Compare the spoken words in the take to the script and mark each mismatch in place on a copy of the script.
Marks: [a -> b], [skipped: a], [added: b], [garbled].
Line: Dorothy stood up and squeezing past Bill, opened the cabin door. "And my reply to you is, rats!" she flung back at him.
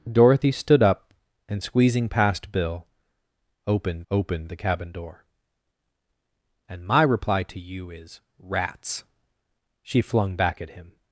Dorothy stood up and squeezing past Bill, opened [added: opened] the cabin door. "And my reply to you is, rats!" she flung back at him.